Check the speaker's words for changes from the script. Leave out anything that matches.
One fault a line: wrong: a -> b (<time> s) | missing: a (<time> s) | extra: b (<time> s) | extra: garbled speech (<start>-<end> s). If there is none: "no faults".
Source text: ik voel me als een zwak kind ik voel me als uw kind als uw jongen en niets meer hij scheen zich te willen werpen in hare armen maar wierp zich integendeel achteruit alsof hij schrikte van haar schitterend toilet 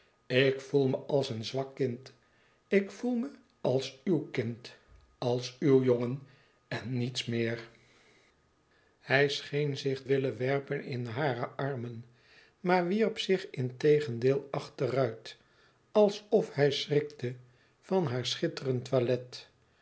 missing: te (10.0 s)